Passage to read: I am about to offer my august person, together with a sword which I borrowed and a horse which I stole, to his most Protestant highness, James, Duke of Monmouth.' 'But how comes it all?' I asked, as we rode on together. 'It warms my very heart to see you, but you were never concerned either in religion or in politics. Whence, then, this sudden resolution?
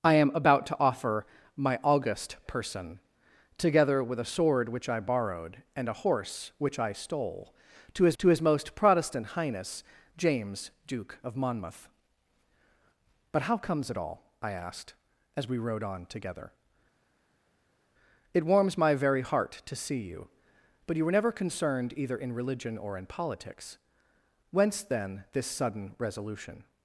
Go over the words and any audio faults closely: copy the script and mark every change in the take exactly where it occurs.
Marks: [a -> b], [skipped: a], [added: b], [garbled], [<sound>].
I am about to offer my august person, together with a sword which I borrowed and a horse which I stole, to his [added: to his] most Protestant highness, James, Duke of Monmouth.' 'But how comes it all?' I asked, as we rode on together. 'It warms my very heart to see you, but you were never concerned either in religion or in politics. Whence, then, this sudden resolution?